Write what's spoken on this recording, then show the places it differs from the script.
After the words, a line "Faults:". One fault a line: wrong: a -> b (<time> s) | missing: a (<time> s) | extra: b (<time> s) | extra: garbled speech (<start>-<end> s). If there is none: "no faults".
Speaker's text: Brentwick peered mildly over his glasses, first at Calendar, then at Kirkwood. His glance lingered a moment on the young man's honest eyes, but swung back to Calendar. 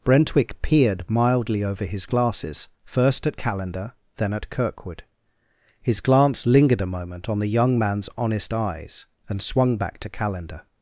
Brentwick peered mildly over his glasses, first at Calendar, then at Kirkwood. His glance lingered a moment on the young man's honest eyes, and swung back to Calendar.
Faults:
wrong: but -> and (9.3 s)